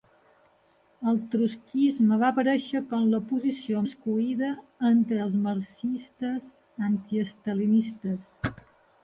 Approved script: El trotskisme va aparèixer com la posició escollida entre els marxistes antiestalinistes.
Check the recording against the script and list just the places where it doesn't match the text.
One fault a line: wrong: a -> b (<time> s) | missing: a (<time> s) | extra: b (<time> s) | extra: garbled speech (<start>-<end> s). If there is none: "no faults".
no faults